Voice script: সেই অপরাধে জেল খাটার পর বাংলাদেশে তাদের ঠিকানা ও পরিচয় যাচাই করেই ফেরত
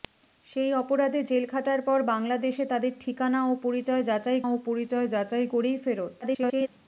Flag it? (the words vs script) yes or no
yes